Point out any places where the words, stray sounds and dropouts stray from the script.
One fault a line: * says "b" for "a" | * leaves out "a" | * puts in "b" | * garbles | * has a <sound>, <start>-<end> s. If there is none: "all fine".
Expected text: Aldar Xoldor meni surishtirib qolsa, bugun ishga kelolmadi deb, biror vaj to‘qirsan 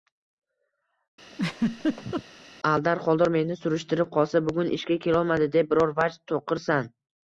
* has a laugh, 1.3-2.2 s